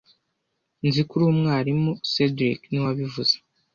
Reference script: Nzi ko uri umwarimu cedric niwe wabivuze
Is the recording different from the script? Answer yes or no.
no